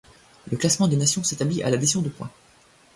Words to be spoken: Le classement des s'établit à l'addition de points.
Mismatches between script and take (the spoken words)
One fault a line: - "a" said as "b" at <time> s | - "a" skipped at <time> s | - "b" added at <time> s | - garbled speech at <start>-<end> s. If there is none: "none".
- "nations" added at 0.9 s